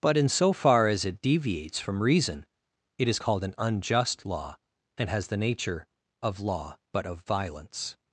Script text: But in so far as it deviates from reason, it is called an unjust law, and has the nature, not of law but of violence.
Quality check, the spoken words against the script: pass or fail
fail